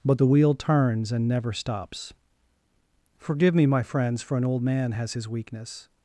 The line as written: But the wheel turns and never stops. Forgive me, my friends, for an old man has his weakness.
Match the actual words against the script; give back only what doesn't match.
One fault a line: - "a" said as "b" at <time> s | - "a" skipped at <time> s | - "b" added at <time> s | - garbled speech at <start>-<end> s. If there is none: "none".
none